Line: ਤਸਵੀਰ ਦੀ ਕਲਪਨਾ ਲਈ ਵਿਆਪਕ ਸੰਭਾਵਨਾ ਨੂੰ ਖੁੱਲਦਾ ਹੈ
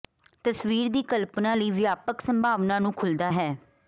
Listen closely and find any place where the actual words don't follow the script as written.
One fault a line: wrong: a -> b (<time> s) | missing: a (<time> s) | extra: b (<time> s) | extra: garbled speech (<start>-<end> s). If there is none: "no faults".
no faults